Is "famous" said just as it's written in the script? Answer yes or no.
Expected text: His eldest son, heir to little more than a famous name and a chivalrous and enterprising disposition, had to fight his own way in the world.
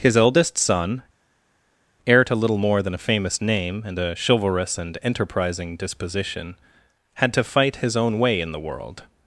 yes